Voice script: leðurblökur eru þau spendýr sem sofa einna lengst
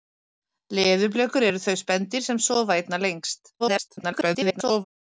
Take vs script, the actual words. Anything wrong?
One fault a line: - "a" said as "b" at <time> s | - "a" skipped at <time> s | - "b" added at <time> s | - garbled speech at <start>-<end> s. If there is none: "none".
- garbled speech at 3.6-4.8 s